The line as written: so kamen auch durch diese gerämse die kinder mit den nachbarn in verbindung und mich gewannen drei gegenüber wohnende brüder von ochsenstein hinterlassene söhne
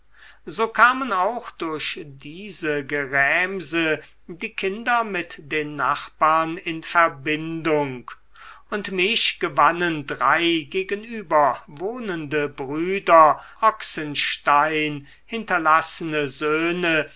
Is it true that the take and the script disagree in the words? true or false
true